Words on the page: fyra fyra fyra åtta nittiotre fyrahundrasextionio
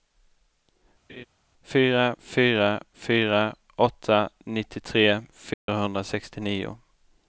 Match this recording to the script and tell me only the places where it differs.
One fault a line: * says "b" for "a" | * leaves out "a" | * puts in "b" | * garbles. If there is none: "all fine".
all fine